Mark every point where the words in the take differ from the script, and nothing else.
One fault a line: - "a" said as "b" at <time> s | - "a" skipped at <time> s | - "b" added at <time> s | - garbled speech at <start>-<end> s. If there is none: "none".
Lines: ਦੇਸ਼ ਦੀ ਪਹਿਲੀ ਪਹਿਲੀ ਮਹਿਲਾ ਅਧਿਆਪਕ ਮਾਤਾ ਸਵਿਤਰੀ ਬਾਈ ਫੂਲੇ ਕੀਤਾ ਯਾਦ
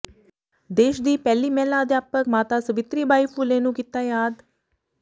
- "ਪਹਿਲੀ" skipped at 1.5 s
- "ਨੂੰ" added at 3.6 s